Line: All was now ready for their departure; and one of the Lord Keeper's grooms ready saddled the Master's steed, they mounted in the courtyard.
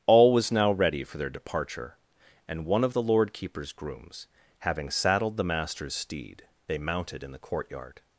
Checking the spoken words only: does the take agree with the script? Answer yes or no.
no